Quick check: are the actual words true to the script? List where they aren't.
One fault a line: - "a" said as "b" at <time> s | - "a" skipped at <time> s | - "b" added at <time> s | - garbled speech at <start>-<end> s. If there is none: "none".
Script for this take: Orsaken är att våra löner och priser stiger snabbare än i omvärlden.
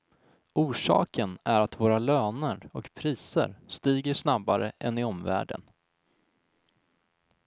none